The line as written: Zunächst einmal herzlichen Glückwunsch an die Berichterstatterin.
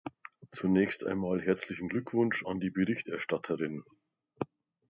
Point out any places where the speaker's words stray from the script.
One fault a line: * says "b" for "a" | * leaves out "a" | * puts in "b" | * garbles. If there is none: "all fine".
all fine